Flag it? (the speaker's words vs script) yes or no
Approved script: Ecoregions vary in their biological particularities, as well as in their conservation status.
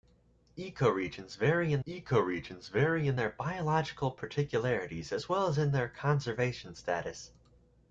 yes